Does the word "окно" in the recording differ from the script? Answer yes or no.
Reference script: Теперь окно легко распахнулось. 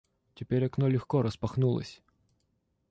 no